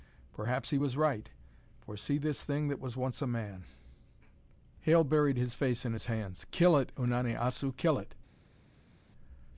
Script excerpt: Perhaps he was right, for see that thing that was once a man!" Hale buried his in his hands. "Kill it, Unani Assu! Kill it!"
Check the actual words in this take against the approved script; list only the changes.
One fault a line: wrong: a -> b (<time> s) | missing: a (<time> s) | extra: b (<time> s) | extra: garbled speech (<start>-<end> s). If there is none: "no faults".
wrong: that -> this (2.2 s)
extra: face (5.5 s)